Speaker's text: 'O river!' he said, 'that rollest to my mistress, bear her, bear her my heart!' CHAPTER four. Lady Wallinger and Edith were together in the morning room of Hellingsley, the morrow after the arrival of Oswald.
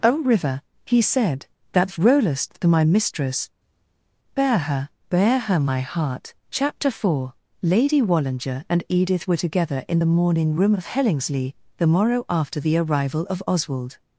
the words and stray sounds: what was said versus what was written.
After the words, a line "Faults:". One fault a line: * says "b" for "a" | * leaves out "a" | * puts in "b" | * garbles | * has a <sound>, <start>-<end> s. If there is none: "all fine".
'O river!' he said, 'that rollest to my mistress, bear her, bear her my heart!' CHAPTER four. Lady Wallinger and Edith were together in the morning room of Hellingsley, the morrow after the arrival of Oswald.
Faults:
all fine